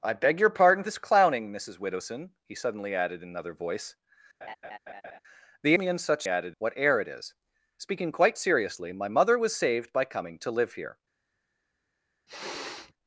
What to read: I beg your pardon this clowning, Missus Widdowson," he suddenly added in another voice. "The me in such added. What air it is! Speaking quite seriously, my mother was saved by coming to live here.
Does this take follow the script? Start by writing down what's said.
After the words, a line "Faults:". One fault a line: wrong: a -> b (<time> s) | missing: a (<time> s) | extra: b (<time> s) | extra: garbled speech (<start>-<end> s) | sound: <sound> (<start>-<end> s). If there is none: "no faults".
I beg your pardon this clowning, Missus Widdowson," he suddenly added in another voice. "The me in such added. What air it is! Speaking quite seriously, my mother was saved by coming to live here.
Faults:
sound: laugh (4.4-5.2 s)
sound: sniff (12.3-12.9 s)